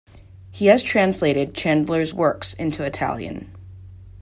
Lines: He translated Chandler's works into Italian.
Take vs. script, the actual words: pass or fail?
fail